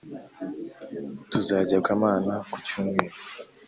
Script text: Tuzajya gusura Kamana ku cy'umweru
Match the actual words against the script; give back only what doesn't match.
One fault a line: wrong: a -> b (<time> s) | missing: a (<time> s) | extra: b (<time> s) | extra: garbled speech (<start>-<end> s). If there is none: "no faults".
missing: gusura (1.8 s)